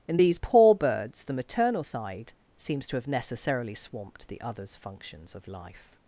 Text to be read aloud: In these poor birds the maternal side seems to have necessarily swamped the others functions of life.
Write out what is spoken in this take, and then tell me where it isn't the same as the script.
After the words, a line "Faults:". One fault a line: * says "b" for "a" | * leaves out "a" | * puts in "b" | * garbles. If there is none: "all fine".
In these poor birds the maternal side seems to have necessarily swamped the others functions of life.
Faults:
all fine